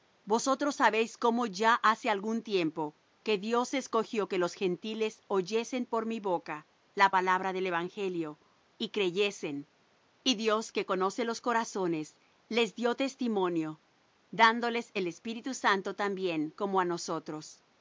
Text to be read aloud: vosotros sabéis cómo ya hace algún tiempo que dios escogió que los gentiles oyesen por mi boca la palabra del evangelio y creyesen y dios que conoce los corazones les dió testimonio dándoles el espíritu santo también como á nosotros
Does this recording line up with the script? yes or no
yes